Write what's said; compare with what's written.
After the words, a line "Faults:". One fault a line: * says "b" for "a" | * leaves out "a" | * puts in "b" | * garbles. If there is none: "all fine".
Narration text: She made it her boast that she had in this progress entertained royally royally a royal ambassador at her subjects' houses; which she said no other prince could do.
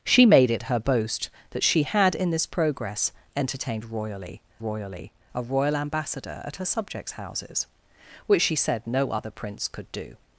She made it her boast that she had in this progress entertained royally royally a royal ambassador at her subjects' houses; which she said no other prince could do.
Faults:
all fine